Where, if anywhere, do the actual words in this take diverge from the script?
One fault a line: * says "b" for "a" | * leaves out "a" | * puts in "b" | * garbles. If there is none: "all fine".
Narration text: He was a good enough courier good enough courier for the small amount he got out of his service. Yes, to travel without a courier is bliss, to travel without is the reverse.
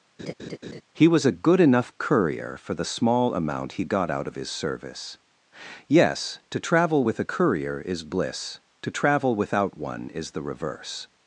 * leaves out "good enough courier"
* says "with" for "without"
* puts in "one"